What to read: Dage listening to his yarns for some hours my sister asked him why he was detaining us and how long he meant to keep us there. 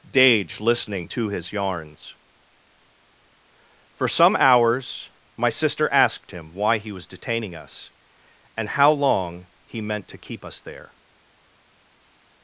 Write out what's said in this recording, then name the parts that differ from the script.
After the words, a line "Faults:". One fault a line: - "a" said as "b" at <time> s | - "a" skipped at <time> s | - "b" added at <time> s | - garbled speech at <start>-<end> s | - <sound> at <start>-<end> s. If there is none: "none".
Dage listening to his yarns for some hours my sister asked him why he was detaining us and how long he meant to keep us there.
Faults:
none